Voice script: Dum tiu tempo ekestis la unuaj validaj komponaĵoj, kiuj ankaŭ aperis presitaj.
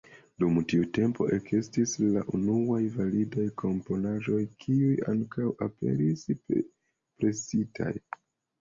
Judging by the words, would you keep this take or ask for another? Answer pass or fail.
pass